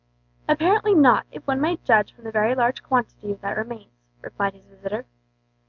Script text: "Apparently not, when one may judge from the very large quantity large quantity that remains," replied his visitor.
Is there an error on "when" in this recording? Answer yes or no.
yes